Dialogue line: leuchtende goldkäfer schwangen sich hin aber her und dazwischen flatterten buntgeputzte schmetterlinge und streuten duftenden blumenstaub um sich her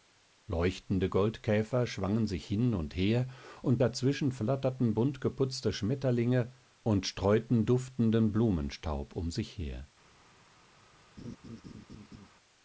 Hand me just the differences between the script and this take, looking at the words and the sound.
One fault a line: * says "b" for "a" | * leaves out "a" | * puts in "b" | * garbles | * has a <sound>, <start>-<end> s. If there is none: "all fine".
* says "und" for "aber"
* has a laugh, 11.2-12.3 s